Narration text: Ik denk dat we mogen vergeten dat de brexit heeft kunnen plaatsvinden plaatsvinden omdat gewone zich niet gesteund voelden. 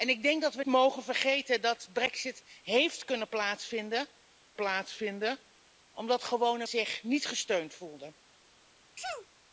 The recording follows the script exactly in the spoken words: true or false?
true